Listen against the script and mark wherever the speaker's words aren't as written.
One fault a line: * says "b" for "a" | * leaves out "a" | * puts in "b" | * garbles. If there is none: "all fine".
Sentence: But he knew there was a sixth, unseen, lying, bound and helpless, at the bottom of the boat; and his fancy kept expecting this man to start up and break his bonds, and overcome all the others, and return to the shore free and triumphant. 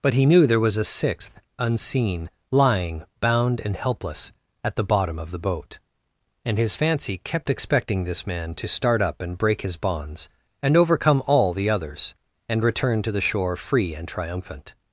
all fine